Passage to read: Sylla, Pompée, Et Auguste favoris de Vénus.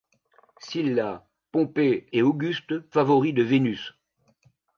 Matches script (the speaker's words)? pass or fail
pass